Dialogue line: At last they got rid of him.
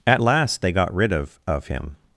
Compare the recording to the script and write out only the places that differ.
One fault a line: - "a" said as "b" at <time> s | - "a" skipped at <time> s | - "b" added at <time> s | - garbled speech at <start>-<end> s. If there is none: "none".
- "of" added at 1.5 s